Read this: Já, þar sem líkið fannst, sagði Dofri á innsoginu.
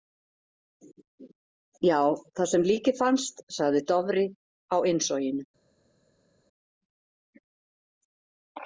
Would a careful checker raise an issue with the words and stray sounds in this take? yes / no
no